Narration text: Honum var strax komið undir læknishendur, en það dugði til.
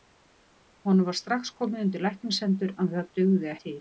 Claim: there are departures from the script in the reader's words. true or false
false